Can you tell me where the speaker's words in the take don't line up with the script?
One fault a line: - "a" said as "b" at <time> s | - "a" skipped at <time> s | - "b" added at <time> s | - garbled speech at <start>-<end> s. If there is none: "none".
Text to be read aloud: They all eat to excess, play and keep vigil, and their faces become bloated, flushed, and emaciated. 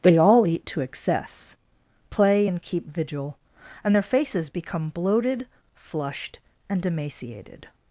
none